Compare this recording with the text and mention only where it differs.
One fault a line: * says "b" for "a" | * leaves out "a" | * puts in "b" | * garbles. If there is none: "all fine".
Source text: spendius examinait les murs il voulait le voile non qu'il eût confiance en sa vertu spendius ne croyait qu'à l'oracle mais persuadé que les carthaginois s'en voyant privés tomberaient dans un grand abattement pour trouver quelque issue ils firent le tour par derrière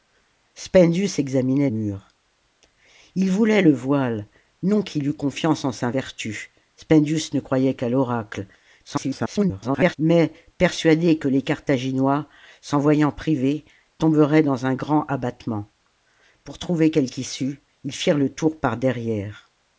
* leaves out "les"
* garbles